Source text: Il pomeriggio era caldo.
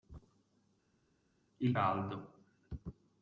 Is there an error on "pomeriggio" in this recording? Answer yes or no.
yes